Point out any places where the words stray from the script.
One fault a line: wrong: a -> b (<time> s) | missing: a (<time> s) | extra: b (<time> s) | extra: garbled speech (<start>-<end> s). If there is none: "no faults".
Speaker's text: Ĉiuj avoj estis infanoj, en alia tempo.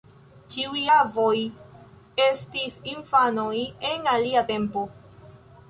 no faults